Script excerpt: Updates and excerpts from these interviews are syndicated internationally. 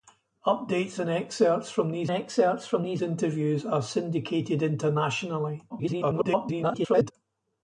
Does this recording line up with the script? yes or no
no